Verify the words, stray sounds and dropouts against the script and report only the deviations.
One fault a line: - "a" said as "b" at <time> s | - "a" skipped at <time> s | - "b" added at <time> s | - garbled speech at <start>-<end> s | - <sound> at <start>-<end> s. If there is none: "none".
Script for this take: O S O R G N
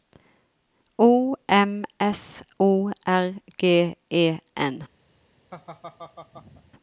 - "M" added at 1.5 s
- "E" added at 4.1 s
- laugh at 5.5-6.7 s